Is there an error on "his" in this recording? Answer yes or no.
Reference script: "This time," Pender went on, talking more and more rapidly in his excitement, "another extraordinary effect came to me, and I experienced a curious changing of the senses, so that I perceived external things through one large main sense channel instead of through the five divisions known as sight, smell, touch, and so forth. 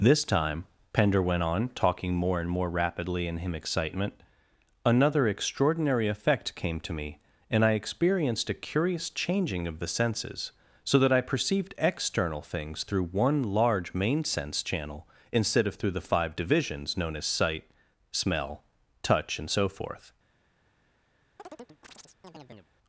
yes